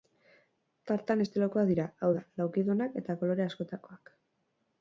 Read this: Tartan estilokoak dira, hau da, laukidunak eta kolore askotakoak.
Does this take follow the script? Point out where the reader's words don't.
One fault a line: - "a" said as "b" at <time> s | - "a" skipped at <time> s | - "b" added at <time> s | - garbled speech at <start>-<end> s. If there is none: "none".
none